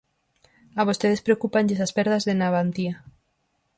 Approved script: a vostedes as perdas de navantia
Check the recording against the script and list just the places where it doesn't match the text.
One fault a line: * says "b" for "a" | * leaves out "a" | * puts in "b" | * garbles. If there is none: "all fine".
* puts in "preocúpanlles"